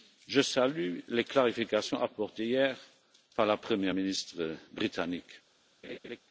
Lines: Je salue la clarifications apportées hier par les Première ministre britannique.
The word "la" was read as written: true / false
false